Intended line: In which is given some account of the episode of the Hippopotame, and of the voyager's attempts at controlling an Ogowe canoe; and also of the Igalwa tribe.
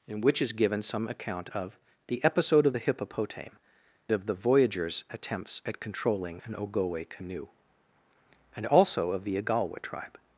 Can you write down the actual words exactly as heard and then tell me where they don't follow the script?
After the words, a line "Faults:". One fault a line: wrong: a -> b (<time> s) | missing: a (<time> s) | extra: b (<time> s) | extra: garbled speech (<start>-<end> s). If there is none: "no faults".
In which is given some account of the episode of the Hippopotame, of the voyager's attempts at controlling an Ogowe canoe; and also of the Igalwa tribe.
Faults:
missing: and (3.6 s)